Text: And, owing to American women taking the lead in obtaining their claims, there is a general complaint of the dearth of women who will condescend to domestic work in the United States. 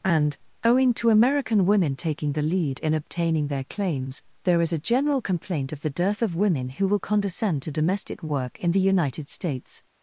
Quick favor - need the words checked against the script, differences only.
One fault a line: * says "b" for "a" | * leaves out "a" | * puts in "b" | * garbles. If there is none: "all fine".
all fine